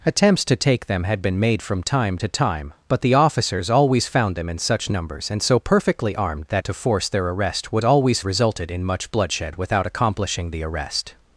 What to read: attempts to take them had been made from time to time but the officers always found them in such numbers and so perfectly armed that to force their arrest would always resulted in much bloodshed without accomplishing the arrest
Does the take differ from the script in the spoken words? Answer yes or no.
no